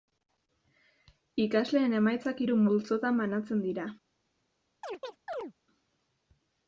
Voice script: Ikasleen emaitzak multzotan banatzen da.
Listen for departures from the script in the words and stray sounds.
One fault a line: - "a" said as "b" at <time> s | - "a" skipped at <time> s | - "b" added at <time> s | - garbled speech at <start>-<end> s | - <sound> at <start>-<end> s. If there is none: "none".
- "hiru" added at 2.4 s
- "da" said as "dira" at 3.7 s
- chirp at 4.8-5.5 s